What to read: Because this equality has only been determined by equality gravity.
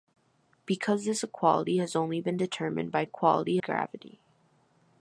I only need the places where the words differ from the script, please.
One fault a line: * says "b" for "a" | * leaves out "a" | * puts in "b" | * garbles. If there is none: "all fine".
all fine